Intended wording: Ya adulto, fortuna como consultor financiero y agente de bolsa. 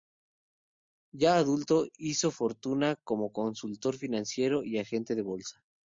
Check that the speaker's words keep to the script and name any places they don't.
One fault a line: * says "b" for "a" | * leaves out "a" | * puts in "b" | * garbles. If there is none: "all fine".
* puts in "hizo"